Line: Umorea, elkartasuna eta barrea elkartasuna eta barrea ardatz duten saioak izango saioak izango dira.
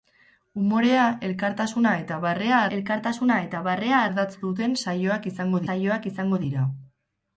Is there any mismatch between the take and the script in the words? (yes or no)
no